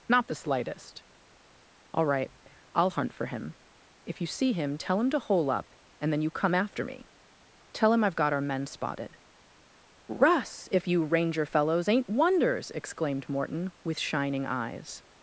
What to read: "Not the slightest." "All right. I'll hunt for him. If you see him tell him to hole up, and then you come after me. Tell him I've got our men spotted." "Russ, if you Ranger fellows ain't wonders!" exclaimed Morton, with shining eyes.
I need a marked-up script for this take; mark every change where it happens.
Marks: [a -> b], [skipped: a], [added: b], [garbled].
"Not the slightest." "All right. I'll hunt for him. If you see him tell him to hole up, and then you come after me. Tell him I've got our men spotted." "Russ, if you Ranger fellows ain't wonders!" exclaimed Morton, with shining eyes.